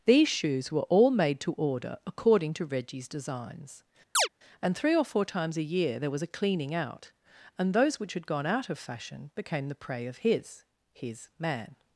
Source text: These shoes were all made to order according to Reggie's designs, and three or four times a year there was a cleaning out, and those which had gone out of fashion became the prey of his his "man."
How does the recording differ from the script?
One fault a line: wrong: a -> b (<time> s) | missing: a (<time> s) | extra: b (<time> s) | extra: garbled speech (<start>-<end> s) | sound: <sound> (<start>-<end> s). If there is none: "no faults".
sound: chirp (4.1-4.3 s)